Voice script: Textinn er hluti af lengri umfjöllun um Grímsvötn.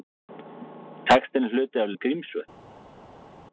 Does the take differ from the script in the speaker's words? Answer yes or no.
yes